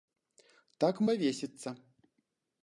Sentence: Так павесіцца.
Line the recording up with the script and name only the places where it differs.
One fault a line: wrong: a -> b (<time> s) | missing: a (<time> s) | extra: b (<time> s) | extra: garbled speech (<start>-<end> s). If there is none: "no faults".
no faults